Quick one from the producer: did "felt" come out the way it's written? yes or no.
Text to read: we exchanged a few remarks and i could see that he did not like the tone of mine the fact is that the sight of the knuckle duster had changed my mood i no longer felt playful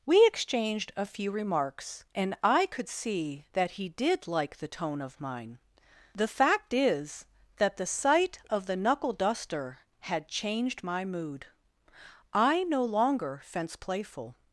no